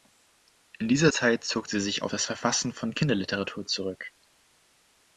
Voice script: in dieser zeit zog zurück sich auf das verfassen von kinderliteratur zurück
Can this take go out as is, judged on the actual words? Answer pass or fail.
fail